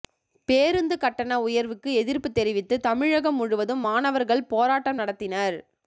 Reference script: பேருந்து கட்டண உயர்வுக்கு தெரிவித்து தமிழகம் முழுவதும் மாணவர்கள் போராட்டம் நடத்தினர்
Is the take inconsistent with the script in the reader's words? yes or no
yes